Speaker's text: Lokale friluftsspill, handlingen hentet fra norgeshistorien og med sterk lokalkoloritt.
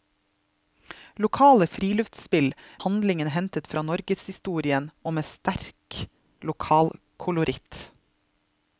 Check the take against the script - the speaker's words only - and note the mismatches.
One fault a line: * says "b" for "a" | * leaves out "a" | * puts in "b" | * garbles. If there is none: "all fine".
all fine